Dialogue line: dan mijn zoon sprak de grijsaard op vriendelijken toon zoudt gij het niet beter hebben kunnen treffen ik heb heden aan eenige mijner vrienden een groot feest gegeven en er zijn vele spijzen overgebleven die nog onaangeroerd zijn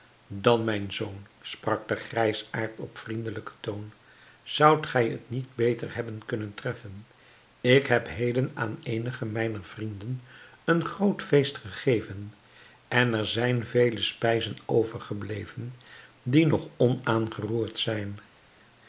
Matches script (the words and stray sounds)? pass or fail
pass